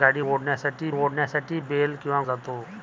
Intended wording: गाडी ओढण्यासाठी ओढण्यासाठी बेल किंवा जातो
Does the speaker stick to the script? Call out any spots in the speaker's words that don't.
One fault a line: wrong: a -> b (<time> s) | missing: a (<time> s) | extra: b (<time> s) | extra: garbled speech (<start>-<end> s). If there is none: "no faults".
no faults